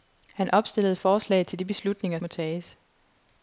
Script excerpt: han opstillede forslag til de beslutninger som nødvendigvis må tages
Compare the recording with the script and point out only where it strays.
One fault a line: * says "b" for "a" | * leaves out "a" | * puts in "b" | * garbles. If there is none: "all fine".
* leaves out "som nødvendigvis"